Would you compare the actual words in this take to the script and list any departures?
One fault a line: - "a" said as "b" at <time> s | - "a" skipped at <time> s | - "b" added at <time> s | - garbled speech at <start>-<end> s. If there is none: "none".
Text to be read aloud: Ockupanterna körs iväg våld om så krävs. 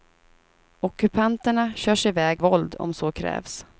none